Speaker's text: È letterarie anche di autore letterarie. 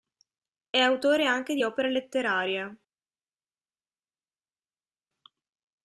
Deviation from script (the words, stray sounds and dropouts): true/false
true